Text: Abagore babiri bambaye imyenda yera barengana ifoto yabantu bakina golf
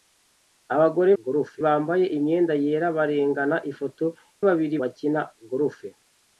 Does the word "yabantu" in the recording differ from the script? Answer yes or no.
yes